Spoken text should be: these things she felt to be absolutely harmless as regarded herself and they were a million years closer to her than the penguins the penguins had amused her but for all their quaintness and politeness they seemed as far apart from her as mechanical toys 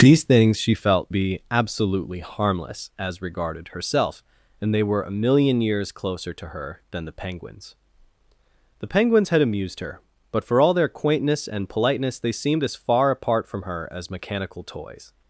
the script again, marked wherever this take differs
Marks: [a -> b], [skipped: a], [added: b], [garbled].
these things she felt [skipped: to] be absolutely harmless as regarded herself and they were a million years closer to her than the penguins the penguins had amused her but for all their quaintness and politeness they seemed as far apart from her as mechanical toys